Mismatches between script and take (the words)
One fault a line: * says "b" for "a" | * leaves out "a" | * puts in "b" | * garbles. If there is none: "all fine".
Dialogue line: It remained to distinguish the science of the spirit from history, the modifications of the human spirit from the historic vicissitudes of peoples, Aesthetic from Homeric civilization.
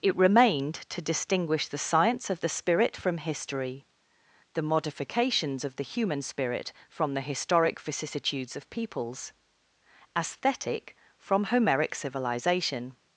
all fine